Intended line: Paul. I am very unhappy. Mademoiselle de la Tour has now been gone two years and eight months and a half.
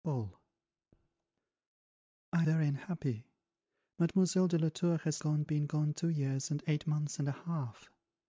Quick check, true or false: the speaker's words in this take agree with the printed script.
false